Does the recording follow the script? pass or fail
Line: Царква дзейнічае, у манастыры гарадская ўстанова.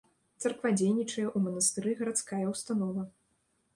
pass